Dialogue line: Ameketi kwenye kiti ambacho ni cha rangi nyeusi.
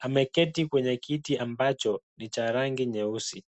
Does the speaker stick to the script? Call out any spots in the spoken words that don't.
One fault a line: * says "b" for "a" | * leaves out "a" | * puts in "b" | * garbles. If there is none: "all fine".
all fine